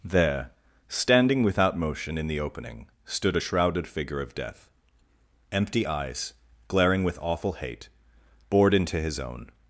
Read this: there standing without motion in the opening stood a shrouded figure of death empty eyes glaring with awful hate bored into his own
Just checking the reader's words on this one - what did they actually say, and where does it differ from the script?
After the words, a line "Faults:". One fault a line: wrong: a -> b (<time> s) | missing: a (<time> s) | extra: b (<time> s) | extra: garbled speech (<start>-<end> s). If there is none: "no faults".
there standing without motion in the opening stood a shrouded figure of death empty eyes glaring with awful hate bored into his own
Faults:
no faults